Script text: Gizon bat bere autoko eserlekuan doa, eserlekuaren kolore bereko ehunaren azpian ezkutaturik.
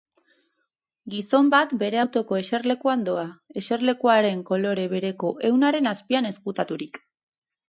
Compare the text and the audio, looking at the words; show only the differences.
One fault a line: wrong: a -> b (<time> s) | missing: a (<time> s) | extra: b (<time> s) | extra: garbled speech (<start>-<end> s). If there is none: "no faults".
no faults